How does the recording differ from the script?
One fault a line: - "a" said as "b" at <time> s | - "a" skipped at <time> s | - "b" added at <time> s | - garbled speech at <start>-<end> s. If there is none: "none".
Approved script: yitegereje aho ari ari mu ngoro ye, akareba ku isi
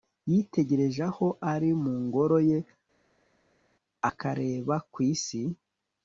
- "ari" skipped at 1.7 s